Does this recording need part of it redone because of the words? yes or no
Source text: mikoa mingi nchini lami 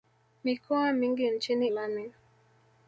no